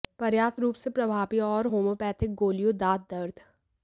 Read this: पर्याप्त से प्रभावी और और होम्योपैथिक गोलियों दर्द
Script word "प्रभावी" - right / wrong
right